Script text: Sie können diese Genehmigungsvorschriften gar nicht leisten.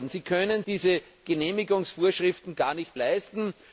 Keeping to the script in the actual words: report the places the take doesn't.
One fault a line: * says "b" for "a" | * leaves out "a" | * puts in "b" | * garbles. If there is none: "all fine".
all fine